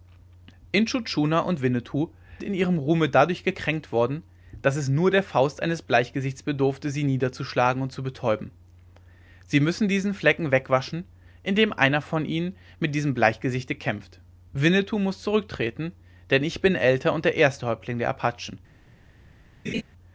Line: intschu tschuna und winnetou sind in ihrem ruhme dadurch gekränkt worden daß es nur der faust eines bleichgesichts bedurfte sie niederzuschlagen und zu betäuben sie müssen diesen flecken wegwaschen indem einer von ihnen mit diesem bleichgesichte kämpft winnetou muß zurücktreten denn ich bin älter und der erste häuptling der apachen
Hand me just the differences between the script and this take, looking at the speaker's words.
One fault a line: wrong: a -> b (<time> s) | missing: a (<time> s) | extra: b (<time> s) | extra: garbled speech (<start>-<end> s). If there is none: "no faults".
missing: sind (2.1 s)